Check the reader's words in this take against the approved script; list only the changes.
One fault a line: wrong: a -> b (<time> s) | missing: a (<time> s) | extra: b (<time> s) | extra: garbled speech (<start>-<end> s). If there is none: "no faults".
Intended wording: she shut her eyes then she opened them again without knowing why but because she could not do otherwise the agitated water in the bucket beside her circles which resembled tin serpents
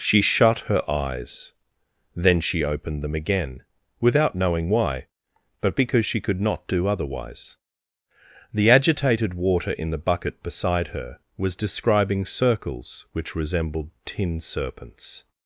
extra: was describing (11.4 s)